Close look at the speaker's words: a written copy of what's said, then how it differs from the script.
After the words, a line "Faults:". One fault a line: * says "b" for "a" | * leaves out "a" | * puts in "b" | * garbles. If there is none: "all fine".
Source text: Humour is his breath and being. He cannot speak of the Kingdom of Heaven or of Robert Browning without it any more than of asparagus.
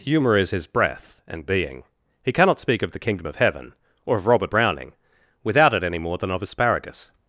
Humour is his breath and being. He cannot speak of the Kingdom of Heaven or of Robert Browning without it any more than of asparagus.
Faults:
all fine